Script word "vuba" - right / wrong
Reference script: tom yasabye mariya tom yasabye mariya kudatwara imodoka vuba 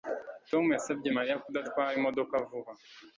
right